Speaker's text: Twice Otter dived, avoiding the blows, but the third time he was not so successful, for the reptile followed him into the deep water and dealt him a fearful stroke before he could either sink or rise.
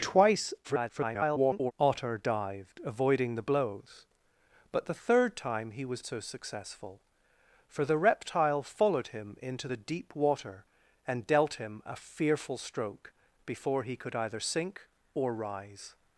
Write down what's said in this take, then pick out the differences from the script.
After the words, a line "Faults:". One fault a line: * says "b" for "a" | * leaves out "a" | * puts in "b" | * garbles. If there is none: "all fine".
Twice [garbled] Otter dived, avoiding the blows, but the third time he was so successful, for the reptile followed him into the deep water and dealt him a fearful stroke before he could either sink or rise.
Faults:
* garbles
* leaves out "not"